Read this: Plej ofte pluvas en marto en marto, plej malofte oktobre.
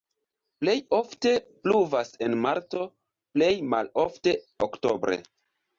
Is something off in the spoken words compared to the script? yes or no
yes